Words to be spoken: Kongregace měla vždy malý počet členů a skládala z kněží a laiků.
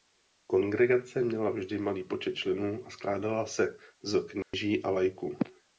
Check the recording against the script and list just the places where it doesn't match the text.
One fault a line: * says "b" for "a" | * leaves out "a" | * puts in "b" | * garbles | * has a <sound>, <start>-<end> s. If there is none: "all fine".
* puts in "se"
* has a dropout, 4.4-4.5 s